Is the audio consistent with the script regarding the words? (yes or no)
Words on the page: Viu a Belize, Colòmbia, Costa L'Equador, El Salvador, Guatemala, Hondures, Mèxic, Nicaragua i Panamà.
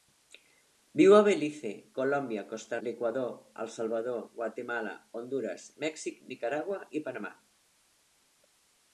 yes